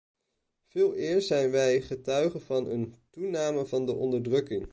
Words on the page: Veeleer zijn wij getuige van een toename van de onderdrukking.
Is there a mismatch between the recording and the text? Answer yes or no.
no